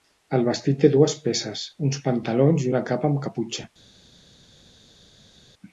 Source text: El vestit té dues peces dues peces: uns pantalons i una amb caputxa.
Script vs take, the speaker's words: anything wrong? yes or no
yes